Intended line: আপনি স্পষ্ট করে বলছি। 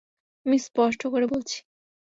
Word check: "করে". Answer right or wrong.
right